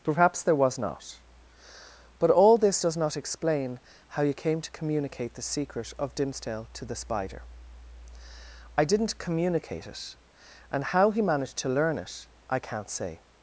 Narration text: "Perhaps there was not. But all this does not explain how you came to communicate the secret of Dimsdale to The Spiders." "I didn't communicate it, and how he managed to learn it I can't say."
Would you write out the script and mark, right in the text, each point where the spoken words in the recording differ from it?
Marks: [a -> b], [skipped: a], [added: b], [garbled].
"Perhaps there was not. But all this does not explain how you came to communicate the secret of Dimsdale to The [Spiders." -> Spider] "I didn't communicate it, and how he managed to learn it I can't say."